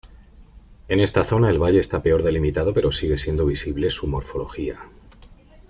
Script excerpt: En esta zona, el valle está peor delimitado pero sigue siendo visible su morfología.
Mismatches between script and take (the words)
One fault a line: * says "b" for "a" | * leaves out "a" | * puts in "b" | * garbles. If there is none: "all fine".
all fine